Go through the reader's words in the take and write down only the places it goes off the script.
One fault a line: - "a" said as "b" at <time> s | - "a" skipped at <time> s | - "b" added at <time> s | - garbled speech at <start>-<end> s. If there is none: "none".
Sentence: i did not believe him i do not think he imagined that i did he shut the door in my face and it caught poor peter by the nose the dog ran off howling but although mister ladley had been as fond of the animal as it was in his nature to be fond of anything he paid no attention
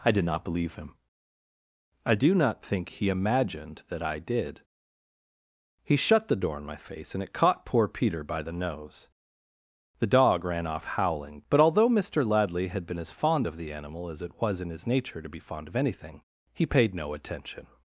none